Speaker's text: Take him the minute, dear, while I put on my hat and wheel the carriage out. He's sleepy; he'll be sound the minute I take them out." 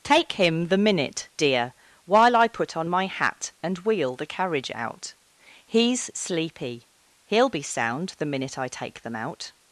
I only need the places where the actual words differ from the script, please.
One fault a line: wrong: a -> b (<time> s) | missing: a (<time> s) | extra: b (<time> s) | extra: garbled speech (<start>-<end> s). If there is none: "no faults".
no faults